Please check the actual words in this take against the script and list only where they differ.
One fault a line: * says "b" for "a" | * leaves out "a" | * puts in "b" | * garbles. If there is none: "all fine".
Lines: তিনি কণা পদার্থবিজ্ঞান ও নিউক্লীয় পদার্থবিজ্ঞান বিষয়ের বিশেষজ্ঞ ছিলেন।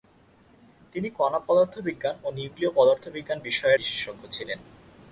all fine